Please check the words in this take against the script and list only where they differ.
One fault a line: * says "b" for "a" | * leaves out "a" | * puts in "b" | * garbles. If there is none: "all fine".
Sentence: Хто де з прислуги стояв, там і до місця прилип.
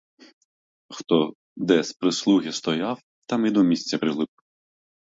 all fine